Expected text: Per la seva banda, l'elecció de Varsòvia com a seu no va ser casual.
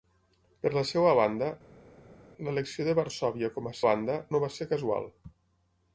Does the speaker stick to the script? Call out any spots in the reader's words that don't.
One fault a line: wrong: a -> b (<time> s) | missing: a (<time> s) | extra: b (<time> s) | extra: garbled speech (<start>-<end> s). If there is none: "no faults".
wrong: seu -> banda (3.9 s)